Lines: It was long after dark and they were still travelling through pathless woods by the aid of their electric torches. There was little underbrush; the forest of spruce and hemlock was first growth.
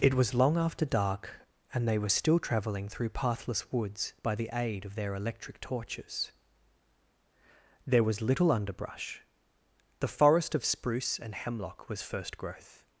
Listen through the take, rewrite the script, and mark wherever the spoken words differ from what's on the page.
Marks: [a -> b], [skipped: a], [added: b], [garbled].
It was long after dark and they were still travelling through pathless woods by the aid of their electric torches. There was little underbrush; the forest of spruce and hemlock was first growth.